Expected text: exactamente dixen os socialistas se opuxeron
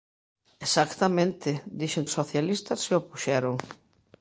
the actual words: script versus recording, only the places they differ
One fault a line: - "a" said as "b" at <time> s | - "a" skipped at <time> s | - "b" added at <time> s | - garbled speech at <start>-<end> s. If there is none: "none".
none